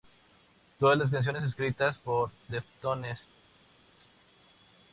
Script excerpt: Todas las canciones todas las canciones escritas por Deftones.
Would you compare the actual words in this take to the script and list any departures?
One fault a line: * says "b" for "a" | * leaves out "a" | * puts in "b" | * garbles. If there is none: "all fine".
* leaves out "todas las canciones"